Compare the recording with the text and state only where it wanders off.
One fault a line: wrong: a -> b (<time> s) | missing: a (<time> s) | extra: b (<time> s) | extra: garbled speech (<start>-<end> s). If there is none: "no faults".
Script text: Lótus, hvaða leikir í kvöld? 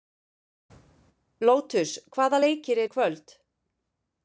no faults